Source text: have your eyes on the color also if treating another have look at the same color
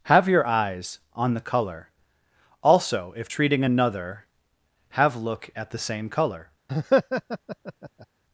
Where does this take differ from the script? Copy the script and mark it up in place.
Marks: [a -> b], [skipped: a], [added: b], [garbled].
have your eyes on the color also if treating another have look at the same color